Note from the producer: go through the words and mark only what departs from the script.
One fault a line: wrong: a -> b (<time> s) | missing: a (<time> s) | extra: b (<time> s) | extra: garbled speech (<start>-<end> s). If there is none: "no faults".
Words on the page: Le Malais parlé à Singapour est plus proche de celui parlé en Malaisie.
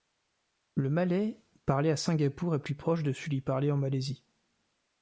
no faults